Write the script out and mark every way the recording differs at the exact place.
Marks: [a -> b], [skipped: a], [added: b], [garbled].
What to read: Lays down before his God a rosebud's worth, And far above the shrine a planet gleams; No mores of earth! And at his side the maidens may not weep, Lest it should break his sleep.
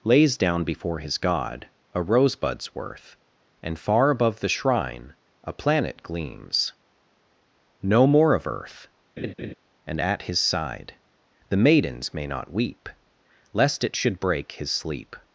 Lays down before his God a rosebud's worth, And far above the shrine a planet gleams; No [mores -> more] of earth! And at his side the maidens may not weep, Lest it should break his sleep.